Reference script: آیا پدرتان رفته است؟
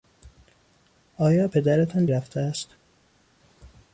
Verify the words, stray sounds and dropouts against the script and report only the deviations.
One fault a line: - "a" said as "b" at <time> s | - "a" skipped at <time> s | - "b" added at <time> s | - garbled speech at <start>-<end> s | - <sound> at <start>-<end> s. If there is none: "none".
none